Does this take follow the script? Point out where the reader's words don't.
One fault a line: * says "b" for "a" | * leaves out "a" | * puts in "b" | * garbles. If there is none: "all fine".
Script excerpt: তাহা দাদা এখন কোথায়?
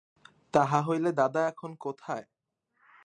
* puts in "হইলে"